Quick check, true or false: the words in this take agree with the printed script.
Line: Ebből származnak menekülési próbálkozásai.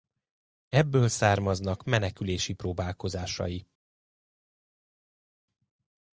true